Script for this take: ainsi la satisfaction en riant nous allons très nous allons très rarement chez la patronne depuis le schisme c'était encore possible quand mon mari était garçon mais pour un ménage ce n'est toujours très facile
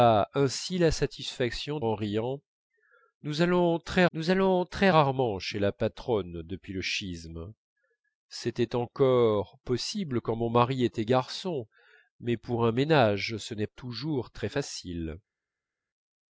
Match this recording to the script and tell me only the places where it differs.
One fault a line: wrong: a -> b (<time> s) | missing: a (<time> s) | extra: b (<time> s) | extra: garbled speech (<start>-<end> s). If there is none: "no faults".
no faults